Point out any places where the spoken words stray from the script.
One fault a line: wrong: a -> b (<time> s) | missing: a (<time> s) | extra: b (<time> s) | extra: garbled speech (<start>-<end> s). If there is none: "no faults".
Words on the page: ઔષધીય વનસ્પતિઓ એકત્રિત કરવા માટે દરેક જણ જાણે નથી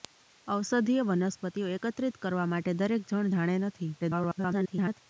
extra: garbled speech (4.0-5.0 s)